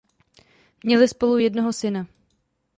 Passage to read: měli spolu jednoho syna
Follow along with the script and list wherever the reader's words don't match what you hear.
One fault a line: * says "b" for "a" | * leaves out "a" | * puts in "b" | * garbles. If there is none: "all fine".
all fine